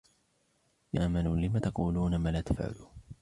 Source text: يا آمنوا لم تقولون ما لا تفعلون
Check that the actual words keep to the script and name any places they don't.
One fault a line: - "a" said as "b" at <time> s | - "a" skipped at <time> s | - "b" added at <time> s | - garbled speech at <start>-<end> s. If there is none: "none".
none